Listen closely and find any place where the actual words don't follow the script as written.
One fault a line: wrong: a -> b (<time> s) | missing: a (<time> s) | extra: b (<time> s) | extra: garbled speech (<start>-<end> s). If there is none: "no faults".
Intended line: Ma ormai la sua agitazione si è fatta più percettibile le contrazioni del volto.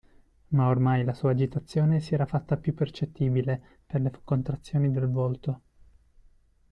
wrong: è -> era (2.1 s)
extra: per (3.9 s)